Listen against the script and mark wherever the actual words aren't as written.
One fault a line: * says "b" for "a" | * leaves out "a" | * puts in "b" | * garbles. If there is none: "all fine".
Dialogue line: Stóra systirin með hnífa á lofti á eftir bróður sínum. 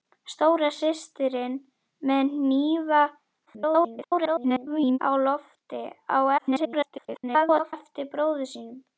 * garbles
* garbles